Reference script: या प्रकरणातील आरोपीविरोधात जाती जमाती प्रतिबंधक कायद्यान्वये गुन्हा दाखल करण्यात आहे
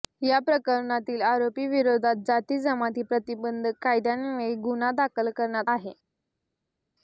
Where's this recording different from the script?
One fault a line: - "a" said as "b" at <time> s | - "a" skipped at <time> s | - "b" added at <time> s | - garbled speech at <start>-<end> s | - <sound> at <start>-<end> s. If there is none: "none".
none